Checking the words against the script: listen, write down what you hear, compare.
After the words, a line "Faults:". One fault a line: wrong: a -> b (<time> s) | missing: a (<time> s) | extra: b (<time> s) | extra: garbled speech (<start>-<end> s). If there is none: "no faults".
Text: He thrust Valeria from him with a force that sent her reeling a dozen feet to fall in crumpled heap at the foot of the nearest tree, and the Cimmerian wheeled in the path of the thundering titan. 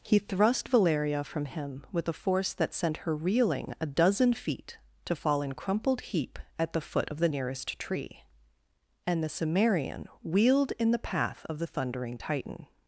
He thrust Valeria from him with a force that sent her reeling a dozen feet to fall in crumpled heap at the foot of the nearest tree, and the Cimmerian wheeled in the path of the thundering titan.
Faults:
no faults